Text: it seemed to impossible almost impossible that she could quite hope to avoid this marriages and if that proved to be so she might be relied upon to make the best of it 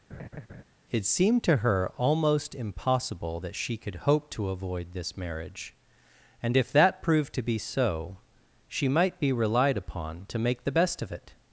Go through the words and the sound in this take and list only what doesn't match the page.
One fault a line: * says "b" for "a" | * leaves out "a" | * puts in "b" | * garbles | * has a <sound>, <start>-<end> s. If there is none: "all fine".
* has a laugh, 0.1-0.6 s
* says "her" for "impossible"
* leaves out "quite"
* says "marriage" for "marriages"